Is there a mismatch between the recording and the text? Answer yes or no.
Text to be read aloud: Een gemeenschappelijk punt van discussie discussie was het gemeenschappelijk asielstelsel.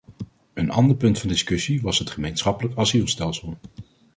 yes